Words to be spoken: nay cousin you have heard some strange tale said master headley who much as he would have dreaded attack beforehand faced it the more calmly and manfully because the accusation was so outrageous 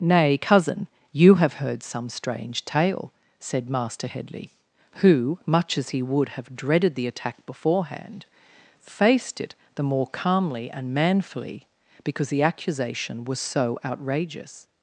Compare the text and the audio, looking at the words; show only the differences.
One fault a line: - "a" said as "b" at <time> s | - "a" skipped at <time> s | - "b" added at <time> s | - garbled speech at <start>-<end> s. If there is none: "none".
- "the" added at 6.9 s